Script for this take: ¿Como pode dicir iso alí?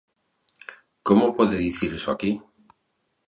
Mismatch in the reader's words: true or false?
true